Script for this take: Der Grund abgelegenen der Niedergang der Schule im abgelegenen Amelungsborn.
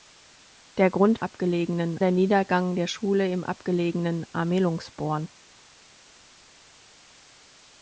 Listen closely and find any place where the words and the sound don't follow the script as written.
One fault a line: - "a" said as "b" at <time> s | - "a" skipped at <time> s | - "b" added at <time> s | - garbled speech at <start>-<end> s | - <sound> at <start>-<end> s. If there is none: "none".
none